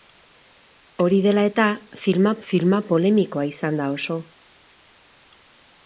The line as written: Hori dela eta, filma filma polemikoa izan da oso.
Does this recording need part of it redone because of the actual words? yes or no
no